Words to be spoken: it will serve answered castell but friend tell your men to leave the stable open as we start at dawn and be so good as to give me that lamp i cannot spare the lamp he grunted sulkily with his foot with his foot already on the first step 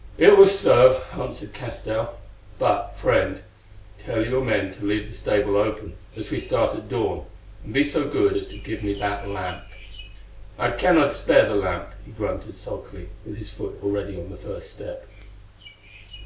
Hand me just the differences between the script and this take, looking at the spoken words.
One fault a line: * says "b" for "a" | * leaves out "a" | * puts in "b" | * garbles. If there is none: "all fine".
* leaves out "with his foot"